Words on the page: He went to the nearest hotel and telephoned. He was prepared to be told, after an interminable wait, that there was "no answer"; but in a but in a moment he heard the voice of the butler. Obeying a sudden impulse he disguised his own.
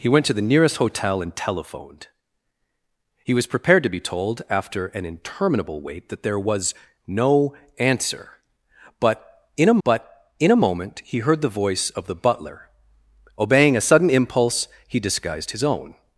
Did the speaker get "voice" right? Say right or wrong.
right